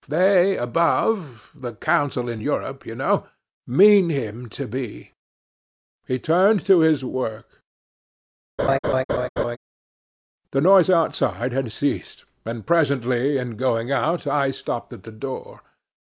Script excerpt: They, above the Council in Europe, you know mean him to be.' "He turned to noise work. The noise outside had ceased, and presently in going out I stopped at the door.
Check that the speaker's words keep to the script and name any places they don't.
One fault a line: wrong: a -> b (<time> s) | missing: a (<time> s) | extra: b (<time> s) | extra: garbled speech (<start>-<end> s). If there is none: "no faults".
wrong: noise -> his (6.8 s)